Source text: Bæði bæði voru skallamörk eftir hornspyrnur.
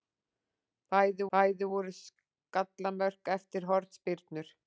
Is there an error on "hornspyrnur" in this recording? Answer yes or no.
no